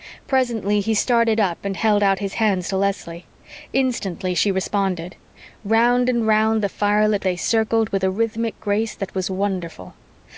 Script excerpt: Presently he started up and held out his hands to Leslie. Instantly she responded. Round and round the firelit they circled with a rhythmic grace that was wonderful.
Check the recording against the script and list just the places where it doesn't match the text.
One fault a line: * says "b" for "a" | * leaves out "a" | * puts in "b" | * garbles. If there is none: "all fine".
all fine